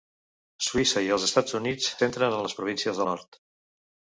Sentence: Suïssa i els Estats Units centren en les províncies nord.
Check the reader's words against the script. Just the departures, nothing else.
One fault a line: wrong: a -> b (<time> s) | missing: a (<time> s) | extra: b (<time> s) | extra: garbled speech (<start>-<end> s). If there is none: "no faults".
no faults